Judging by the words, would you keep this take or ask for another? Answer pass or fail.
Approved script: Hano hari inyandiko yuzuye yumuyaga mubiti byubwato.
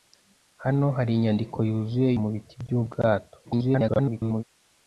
fail